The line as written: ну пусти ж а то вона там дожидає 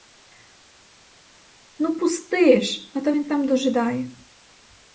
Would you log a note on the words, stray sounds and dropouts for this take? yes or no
yes